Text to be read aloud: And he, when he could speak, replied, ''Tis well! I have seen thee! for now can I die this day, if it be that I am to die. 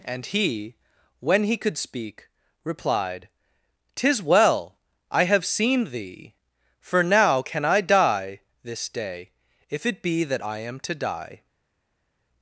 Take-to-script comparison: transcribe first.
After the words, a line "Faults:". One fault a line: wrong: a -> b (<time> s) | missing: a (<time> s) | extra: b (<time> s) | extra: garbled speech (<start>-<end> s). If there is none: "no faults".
And he, when he could speak, replied, ''Tis well! I have seen thee! for now can I die this day, if it be that I am to die.
Faults:
no faults